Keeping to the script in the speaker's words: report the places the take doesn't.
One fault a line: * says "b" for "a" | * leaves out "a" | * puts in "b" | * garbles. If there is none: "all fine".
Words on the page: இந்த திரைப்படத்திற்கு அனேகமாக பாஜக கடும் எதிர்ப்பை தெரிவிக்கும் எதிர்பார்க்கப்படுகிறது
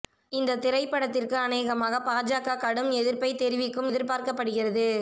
all fine